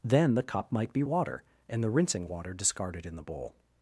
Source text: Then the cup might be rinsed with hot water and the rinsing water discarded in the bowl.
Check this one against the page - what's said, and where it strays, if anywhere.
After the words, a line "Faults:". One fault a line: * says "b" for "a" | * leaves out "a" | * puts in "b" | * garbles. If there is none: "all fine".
Then the cup might be water and the rinsing water discarded in the bowl.
Faults:
* leaves out "rinsed with hot"